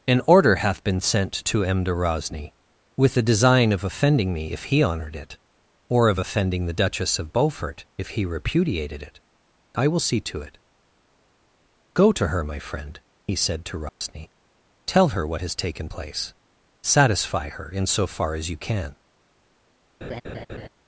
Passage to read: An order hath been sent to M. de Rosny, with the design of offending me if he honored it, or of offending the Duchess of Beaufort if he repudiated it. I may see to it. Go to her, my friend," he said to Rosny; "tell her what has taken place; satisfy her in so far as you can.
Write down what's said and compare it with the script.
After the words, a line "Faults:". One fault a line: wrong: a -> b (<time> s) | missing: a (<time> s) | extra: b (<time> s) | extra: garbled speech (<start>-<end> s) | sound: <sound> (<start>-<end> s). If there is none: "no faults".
An order hath been sent to M. de Rosny, with the design of offending me if he honored it, or of offending the Duchess of Beaufort if he repudiated it. I will see to it. Go to her, my friend," he said to Rosny; "tell her what has taken place; satisfy her in so far as you can.
Faults:
wrong: may -> will (9.9 s)
sound: dropout (13.9-14.0 s)
sound: laugh (20.0-20.7 s)